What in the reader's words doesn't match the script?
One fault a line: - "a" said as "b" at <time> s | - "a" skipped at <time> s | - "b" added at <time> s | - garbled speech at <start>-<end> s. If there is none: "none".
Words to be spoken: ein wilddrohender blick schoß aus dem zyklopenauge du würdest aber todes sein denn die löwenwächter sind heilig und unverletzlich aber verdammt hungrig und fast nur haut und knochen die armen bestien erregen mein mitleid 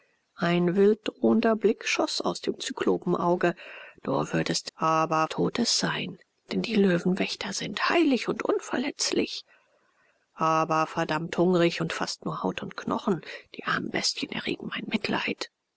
none